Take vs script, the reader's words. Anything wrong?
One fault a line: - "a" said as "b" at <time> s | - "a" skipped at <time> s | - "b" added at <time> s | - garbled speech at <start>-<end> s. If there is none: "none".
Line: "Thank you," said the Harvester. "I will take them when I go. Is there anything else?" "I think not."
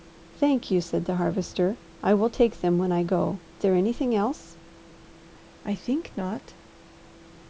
- "Is" skipped at 3.4 s